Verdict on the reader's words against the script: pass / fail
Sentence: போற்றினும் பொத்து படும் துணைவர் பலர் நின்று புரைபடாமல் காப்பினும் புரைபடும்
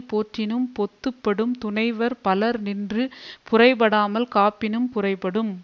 pass